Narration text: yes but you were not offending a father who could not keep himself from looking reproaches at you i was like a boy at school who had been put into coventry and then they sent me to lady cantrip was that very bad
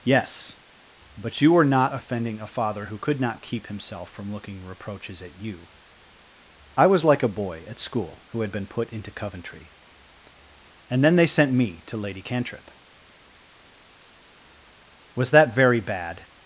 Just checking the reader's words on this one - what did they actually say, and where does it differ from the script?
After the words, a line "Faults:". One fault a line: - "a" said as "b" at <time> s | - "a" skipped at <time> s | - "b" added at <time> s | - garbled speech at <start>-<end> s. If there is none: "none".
yes but you were not offending a father who could not keep himself from looking reproaches at you i was like a boy at school who had been put into coventry and then they sent me to lady cantrip was that very bad
Faults:
none